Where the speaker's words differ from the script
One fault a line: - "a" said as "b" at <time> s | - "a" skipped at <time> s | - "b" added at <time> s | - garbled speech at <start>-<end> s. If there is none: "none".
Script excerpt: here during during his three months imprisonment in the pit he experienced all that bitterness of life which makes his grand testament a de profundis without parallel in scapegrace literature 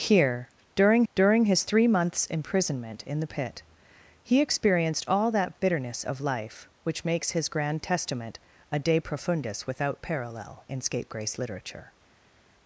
none